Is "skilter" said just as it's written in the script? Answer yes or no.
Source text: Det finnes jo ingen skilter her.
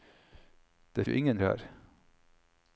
no